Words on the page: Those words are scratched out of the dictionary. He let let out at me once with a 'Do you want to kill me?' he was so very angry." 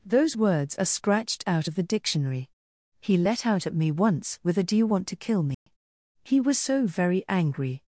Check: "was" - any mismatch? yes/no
no